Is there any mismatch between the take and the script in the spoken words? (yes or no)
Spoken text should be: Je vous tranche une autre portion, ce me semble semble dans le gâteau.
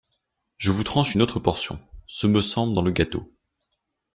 yes